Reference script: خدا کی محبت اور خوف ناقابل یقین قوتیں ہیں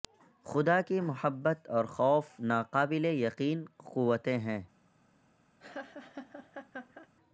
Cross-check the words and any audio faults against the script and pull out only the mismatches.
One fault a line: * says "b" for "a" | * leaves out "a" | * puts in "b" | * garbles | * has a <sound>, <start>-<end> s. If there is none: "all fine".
* has a laugh, 5.6-7.1 s